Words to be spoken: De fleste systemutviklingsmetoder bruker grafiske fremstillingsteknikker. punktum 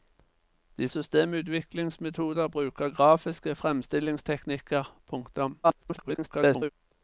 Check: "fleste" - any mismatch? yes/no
yes